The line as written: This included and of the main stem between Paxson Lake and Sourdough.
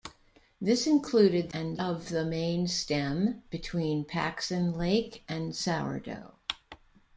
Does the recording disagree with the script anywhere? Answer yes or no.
no